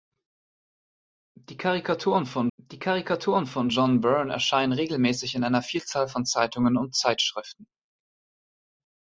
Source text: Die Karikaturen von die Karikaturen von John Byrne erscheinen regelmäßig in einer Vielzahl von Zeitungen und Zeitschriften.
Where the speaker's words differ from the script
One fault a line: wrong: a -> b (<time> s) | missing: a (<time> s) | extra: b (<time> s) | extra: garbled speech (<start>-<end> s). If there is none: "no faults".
no faults